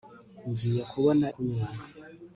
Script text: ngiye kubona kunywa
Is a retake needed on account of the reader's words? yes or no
no